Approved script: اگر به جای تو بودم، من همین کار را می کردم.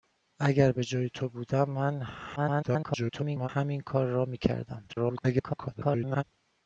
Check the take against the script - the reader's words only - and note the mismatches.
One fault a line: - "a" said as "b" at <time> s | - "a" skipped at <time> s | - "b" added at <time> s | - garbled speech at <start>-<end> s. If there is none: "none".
- garbled speech at 2.4-3.5 s
- garbled speech at 4.9-6.2 s